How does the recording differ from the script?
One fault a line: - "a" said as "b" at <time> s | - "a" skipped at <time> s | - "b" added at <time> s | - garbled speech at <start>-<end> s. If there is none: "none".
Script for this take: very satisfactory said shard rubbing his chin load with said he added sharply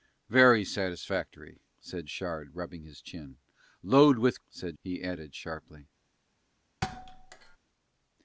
none